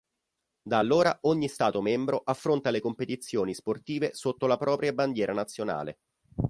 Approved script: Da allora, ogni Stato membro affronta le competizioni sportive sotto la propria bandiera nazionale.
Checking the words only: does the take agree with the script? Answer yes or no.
yes